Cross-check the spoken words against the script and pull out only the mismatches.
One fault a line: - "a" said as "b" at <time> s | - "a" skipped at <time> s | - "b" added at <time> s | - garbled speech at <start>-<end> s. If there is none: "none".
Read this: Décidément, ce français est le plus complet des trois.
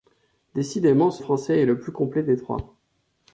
none